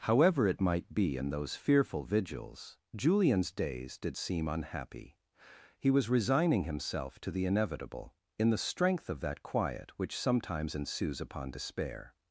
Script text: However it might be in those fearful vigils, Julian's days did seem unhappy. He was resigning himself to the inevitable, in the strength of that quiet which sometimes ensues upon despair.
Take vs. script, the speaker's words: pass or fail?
pass